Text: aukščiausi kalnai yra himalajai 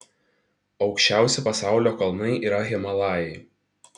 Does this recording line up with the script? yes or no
no